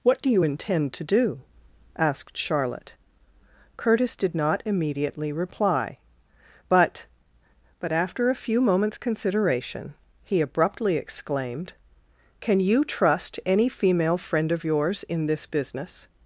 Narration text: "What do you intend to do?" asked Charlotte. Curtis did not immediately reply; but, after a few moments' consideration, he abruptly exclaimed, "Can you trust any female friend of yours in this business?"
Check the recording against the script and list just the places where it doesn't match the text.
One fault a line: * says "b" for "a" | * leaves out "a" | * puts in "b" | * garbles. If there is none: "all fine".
* puts in "but"